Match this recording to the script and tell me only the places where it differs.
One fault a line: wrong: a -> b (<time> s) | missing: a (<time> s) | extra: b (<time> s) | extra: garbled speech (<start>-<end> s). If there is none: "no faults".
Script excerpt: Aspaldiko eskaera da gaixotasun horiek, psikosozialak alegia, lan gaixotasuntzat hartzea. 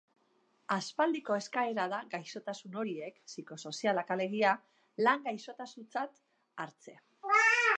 no faults